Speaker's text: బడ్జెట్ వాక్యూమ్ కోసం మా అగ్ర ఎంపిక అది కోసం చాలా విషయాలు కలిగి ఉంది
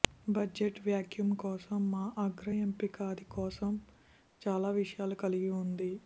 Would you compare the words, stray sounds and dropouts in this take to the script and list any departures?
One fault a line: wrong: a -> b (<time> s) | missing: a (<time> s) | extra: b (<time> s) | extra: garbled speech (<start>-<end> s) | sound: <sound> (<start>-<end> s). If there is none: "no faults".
no faults